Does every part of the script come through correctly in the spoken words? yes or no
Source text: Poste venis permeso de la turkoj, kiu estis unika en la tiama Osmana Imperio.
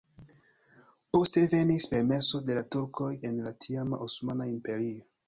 no